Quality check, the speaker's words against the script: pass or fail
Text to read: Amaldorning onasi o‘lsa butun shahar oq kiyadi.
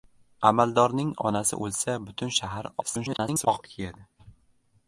fail